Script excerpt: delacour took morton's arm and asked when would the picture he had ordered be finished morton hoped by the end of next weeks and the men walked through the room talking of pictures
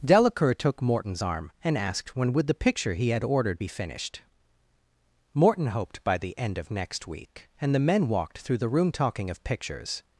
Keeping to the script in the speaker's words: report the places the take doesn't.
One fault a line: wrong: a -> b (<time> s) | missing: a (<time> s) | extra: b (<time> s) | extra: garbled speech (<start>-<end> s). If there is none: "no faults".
wrong: weeks -> week (7.1 s)